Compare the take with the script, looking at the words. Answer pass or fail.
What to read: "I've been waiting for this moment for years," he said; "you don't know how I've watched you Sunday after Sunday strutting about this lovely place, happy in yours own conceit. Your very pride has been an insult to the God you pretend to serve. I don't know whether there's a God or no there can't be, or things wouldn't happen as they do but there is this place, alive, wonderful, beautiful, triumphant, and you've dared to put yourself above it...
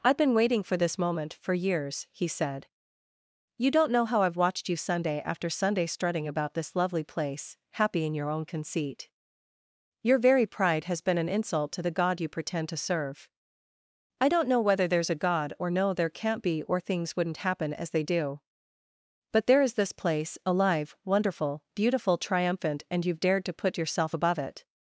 fail